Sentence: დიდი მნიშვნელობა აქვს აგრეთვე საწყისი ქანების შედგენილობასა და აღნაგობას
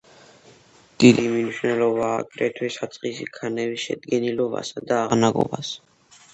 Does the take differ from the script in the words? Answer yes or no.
yes